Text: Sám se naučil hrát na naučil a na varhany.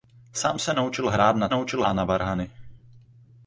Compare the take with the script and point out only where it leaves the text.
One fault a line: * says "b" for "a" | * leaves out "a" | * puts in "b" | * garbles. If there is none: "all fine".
all fine